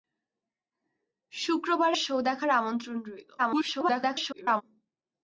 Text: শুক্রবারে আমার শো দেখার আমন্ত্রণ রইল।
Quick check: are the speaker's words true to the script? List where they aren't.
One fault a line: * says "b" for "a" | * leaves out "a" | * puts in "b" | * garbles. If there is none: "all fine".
* leaves out "আমার"
* garbles